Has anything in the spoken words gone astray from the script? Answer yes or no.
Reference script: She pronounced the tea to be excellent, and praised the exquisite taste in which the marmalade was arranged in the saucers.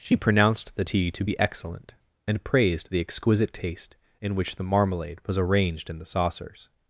no